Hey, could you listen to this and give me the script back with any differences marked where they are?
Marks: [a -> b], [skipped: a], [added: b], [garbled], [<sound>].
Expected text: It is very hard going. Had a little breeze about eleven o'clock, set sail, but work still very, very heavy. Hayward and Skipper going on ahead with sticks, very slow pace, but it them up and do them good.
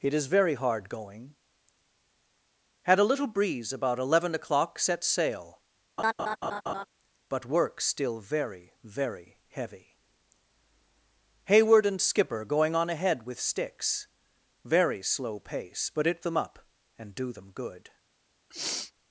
It is very hard going. Had a little breeze about eleven o'clock, set sail, [laugh] but work still very, very heavy. Hayward and Skipper going on ahead with sticks, very slow pace, but it them up and do them good. [sniff]